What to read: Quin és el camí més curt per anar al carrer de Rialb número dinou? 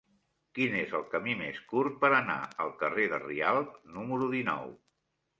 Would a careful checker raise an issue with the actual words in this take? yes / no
no